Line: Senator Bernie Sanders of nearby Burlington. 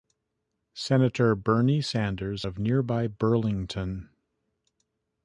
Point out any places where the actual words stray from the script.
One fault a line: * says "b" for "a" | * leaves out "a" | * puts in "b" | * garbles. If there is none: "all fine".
all fine